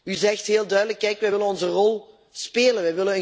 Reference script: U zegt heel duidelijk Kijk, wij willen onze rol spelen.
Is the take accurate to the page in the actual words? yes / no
yes